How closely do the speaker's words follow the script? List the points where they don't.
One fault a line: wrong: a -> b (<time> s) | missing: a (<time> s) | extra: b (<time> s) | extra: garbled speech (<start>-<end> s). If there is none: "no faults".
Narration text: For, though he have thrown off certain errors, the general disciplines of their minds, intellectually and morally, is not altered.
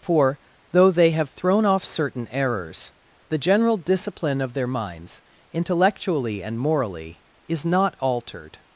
wrong: he -> they (0.9 s)
wrong: disciplines -> discipline (3.8 s)